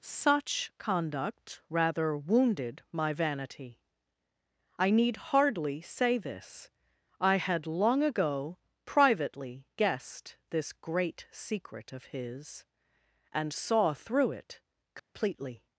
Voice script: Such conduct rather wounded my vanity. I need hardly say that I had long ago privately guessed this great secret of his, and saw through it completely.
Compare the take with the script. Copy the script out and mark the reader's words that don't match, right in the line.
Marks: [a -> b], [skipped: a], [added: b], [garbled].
Such conduct rather wounded my vanity. I need hardly say [that -> this] I had long ago privately guessed this great secret of his, and saw through it completely.